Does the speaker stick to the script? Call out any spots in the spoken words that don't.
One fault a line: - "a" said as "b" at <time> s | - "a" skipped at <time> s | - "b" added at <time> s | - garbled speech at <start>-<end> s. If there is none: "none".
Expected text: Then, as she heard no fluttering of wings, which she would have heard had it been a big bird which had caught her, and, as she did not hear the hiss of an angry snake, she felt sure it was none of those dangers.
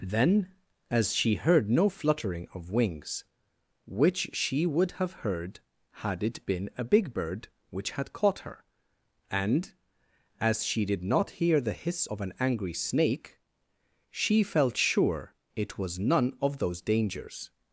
none